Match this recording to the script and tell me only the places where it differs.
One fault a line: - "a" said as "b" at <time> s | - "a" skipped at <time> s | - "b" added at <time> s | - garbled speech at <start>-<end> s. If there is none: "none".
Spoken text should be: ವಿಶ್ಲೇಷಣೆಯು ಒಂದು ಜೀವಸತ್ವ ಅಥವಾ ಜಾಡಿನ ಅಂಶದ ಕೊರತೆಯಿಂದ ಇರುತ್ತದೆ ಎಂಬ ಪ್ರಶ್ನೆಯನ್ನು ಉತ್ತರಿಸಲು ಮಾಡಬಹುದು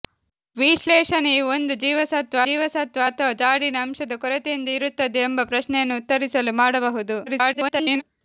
- "ಜೀವಸತ್ವ" added at 2.5 s
- garbled speech at 7.3-8.0 s